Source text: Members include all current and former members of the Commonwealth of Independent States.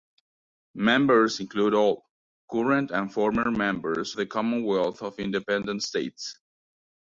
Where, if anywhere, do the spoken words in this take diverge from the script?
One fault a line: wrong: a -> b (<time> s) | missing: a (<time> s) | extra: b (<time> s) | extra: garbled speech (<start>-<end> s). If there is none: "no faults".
missing: of (4.2 s)